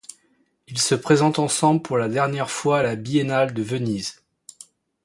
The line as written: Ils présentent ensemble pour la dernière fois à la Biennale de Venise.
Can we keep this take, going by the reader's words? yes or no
no